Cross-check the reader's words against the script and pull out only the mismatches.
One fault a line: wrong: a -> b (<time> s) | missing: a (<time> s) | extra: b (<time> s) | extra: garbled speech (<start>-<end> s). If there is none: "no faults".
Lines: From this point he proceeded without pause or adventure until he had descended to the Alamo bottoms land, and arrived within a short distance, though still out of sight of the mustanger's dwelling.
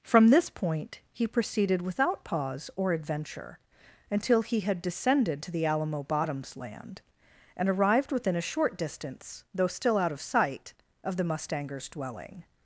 no faults